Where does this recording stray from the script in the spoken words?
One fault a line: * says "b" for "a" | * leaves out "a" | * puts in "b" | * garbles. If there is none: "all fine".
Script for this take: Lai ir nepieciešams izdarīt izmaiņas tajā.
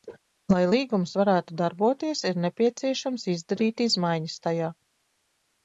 * puts in "līgums varētu darboties"